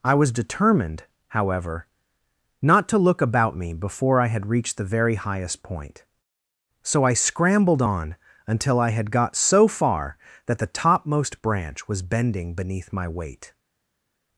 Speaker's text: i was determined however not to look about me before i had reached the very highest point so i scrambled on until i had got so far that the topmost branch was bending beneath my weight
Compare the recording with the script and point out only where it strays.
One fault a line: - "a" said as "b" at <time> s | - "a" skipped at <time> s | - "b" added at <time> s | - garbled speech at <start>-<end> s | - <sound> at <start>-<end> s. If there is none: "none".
none